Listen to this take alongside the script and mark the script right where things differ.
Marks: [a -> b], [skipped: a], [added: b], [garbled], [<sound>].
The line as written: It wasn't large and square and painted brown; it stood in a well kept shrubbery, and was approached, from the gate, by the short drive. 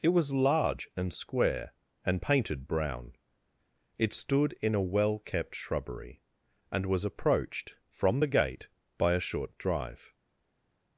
It [wasn't -> was] large and square and painted brown; it stood in a well kept shrubbery, and was approached, from the gate, by [the -> a] short drive.